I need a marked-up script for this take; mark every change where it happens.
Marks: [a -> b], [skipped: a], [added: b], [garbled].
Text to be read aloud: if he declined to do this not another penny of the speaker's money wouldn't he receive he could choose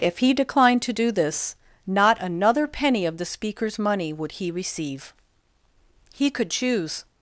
if he declined to do this not another penny of the speaker's money [wouldn't -> would] he receive he could choose